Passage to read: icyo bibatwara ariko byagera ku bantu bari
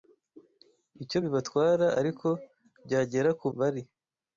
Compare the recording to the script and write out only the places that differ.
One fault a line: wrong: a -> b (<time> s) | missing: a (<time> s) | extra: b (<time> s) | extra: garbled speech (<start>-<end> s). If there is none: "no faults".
missing: bantu (3.5 s)